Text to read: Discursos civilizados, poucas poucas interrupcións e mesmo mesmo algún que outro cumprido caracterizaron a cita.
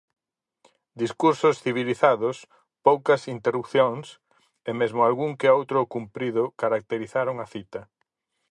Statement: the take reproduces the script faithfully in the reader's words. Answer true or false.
false